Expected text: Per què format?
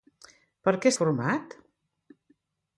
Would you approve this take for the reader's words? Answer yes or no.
yes